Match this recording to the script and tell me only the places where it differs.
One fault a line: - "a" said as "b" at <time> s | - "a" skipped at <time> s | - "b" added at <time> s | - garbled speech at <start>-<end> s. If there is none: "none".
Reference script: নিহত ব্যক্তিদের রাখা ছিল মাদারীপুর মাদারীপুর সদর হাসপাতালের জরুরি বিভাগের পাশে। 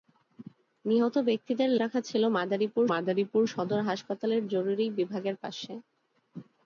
none